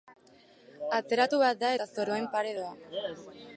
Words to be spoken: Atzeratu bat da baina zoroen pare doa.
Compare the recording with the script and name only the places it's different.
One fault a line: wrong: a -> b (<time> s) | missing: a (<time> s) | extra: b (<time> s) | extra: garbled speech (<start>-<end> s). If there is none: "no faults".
wrong: baina -> eta (1.8 s)